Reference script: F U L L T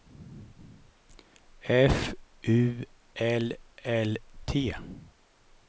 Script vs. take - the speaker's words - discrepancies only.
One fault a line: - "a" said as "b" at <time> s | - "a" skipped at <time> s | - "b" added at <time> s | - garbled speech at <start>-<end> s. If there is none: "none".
none